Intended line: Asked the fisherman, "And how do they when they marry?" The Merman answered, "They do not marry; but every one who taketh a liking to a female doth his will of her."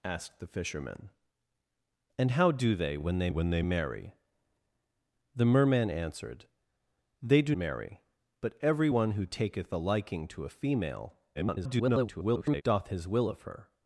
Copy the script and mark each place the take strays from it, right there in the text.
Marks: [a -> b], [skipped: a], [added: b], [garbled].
Asked the fisherman, "And how do they when they [added: when they] marry?" The Merman answered, "They do [skipped: not] marry; but every one who taketh a liking to a female [garbled] doth his will of her."